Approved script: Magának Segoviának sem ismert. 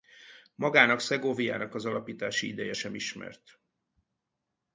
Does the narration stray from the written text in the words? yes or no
yes